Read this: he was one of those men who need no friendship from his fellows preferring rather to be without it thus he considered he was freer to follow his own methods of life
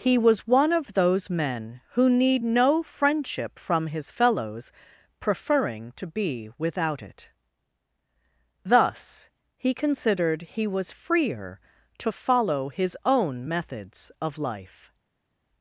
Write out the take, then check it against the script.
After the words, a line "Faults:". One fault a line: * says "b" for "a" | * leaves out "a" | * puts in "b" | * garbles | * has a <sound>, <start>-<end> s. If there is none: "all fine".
he was one of those men who need no friendship from his fellows preferring to be without it thus he considered he was freer to follow his own methods of life
Faults:
* leaves out "rather"